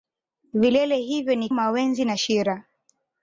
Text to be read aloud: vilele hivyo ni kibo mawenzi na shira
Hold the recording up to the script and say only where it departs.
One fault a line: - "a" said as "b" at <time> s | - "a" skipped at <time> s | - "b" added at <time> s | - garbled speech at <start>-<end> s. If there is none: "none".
- "kibo" skipped at 1.5 s